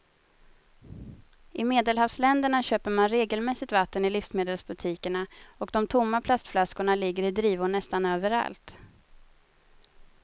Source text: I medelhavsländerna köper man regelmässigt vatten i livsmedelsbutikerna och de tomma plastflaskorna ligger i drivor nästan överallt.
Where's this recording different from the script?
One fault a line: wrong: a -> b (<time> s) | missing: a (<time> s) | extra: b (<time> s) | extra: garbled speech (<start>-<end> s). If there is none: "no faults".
no faults